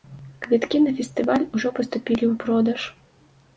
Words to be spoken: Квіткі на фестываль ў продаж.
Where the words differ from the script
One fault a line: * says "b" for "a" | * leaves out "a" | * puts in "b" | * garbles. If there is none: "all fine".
* puts in "ужо паступілі"